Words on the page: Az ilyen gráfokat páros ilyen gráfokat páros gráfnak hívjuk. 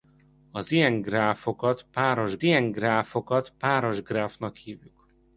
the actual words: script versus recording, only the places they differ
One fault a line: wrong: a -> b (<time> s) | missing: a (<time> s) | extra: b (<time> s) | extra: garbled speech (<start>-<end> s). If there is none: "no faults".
no faults